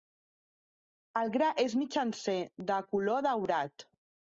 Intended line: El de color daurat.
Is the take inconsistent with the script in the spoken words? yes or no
yes